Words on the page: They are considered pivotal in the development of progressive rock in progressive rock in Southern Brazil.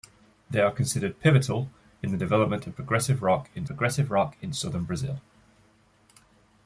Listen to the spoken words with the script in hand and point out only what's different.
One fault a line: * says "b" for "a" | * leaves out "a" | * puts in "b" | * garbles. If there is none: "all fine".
all fine